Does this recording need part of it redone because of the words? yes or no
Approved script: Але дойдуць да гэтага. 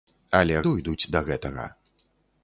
no